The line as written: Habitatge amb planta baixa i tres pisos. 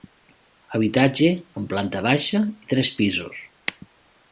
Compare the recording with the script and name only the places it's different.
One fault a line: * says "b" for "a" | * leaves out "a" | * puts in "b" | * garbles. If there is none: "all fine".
all fine